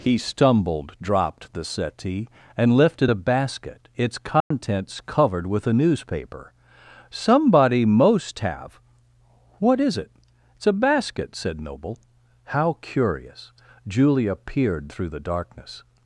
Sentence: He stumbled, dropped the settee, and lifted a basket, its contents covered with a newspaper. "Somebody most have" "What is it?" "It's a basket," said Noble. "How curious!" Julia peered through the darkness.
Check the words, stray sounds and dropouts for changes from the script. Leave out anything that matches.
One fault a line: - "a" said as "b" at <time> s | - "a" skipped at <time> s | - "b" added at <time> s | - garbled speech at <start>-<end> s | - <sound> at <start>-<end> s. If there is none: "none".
- dropout at 4.4-4.5 s